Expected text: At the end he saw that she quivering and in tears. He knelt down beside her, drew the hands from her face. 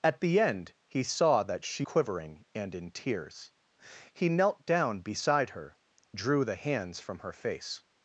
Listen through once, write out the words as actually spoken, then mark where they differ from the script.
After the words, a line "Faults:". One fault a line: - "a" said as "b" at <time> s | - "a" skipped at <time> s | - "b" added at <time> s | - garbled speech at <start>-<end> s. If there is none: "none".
At the end he saw that she quivering and in tears. He knelt down beside her, drew the hands from her face.
Faults:
none